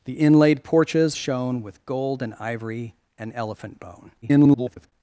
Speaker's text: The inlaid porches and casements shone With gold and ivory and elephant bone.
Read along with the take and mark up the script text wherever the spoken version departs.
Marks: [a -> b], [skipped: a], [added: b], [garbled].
The inlaid porches [skipped: and casements] shone With gold and ivory and elephant bone. [garbled]